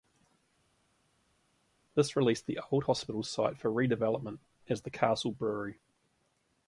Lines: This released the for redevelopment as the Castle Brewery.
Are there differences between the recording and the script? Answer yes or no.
yes